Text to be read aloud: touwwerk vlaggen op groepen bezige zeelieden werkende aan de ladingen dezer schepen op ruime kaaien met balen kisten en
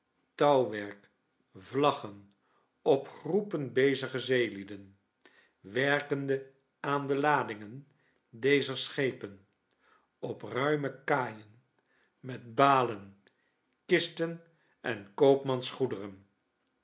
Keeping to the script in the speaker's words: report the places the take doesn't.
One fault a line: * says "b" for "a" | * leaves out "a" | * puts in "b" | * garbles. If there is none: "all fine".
all fine